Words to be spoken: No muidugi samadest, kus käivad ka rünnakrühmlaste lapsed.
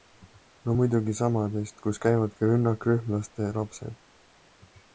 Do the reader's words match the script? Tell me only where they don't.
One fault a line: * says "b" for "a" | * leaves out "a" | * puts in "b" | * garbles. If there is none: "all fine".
all fine